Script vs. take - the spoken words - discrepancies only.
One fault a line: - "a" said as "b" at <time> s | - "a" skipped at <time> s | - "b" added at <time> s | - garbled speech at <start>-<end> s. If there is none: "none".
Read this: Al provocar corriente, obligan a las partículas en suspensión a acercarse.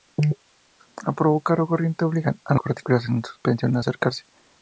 - "las" skipped at 2.5 s